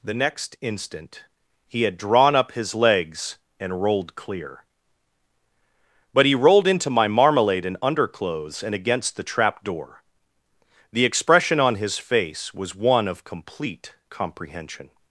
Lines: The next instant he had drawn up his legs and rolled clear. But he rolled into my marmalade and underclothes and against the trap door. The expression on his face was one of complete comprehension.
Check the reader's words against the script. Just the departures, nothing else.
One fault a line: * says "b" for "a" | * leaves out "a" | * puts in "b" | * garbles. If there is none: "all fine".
all fine